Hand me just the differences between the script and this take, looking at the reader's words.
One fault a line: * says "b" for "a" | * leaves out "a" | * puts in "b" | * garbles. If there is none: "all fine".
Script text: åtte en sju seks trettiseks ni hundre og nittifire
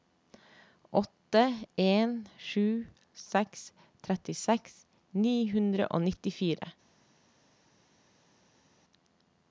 all fine